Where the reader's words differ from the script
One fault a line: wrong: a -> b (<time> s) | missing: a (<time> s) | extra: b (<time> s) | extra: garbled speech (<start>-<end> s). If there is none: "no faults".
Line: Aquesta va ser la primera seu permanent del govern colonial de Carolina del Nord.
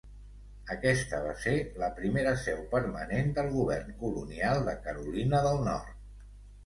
no faults